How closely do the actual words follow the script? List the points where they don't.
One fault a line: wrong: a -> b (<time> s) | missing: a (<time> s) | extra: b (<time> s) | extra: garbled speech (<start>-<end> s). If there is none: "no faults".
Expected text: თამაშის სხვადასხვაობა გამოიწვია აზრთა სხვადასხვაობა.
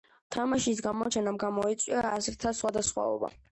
wrong: სხვადასხვაობა -> გამოჩენამ (0.8 s)